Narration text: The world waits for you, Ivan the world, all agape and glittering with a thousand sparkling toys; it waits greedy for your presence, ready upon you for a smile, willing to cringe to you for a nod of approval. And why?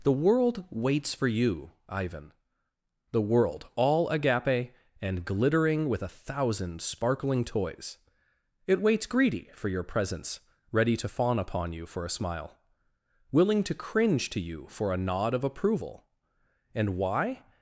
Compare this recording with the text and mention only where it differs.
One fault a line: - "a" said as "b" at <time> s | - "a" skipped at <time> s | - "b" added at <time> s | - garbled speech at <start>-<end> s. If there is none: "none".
- "to fawn" added at 11.0 s